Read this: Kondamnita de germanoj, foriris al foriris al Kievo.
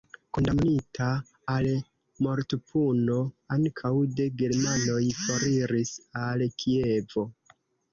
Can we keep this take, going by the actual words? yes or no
no